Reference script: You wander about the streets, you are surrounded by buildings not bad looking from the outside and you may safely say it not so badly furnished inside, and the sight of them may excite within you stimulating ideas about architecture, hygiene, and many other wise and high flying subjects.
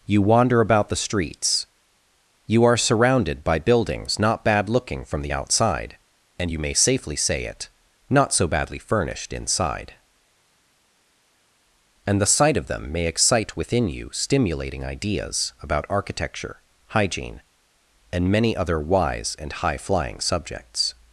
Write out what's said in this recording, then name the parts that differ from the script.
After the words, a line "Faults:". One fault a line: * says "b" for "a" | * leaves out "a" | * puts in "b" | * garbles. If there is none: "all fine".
You wander about the streets, you are surrounded by buildings not bad looking from the outside and you may safely say it not so badly furnished inside, and the sight of them may excite within you stimulating ideas about architecture, hygiene, and many other wise and high flying subjects.
Faults:
all fine